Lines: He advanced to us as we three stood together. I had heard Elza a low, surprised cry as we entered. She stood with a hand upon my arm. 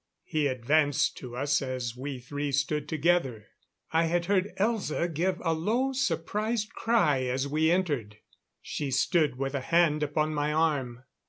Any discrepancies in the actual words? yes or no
yes